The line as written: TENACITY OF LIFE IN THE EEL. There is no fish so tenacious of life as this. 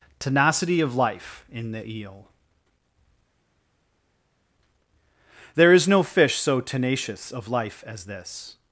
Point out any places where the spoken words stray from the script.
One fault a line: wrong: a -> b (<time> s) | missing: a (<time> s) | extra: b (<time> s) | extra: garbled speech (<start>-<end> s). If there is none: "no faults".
no faults